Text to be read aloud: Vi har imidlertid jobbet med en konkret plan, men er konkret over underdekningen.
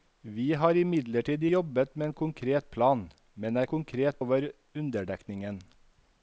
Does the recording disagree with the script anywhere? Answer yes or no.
no